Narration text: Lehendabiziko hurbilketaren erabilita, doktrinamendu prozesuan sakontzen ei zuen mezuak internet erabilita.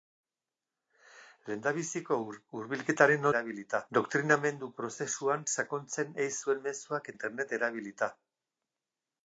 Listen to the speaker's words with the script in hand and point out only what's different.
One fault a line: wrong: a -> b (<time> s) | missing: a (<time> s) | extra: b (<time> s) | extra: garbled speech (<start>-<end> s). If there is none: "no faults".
no faults